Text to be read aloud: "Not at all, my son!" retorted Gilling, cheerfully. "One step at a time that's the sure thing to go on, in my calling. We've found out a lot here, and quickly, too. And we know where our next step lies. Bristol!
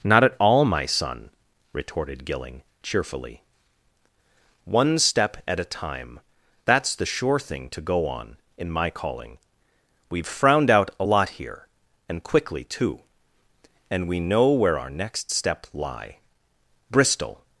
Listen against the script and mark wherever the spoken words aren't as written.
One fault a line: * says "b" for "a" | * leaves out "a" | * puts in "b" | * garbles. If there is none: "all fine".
* says "frowned" for "found"
* says "lie" for "lies"